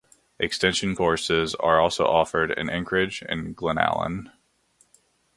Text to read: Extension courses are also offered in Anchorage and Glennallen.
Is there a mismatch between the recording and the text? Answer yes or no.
no